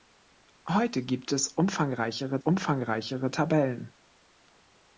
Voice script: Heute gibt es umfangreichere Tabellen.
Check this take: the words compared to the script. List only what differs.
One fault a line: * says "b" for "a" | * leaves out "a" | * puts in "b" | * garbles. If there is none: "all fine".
* puts in "umfangreichere"